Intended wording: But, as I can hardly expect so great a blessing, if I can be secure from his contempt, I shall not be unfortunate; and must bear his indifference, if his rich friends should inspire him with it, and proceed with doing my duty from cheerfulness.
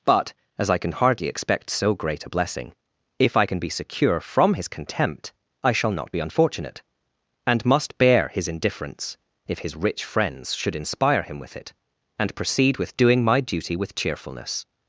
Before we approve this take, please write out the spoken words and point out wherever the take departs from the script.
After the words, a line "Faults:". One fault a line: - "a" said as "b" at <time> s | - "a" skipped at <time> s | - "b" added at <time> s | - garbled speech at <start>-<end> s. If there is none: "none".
But, as I can hardly expect so great a blessing, if I can be secure from his contempt, I shall not be unfortunate; and must bear his indifference, if his rich friends should inspire him with it, and proceed with doing my duty with cheerfulness.
Faults:
- "from" said as "with" at 13.8 s